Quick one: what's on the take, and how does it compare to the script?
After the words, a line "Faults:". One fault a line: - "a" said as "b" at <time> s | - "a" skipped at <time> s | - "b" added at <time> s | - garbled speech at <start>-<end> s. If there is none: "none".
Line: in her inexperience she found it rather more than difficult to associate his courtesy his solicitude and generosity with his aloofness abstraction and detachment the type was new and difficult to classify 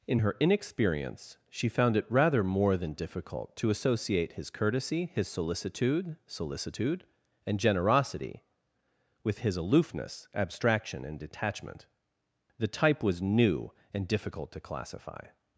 in her inexperience she found it rather more than difficult to associate his courtesy his solicitude solicitude and generosity with his aloofness abstraction and detachment the type was new and difficult to classify
Faults:
- "solicitude" added at 6.2 s